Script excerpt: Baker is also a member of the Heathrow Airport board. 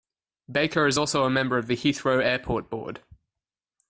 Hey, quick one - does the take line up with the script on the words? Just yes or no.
yes